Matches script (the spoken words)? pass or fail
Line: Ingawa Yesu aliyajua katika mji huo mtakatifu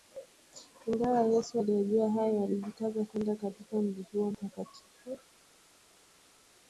fail